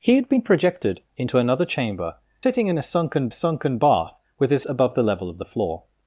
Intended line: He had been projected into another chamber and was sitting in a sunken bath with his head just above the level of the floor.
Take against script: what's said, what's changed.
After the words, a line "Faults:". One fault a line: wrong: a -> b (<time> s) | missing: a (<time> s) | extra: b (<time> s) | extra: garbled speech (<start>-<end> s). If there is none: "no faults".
He had been projected into another chamber sitting in a sunken sunken bath with his above the level of the floor.
Faults:
missing: and was (2.1 s)
extra: sunken (3.3 s)
missing: head just (4.6 s)